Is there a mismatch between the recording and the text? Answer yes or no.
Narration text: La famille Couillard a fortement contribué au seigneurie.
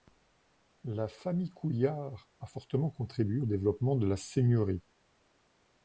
yes